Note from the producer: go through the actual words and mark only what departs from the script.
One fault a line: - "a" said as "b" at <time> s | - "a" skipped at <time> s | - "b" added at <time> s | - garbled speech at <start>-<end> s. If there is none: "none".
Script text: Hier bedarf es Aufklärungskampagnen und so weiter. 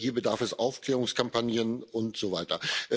none